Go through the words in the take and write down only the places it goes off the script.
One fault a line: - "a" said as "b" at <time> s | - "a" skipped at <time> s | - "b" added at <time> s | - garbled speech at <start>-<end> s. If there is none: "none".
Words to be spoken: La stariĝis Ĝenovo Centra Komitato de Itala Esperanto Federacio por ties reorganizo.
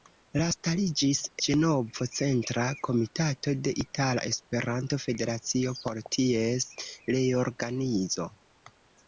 none